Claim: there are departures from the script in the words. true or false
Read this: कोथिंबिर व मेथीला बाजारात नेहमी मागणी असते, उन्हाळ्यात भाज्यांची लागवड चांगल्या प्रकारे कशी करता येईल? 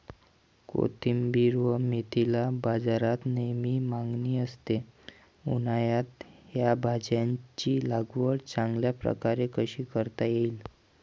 true